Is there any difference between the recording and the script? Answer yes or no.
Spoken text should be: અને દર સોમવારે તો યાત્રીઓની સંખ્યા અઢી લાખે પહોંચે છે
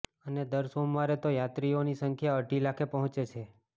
no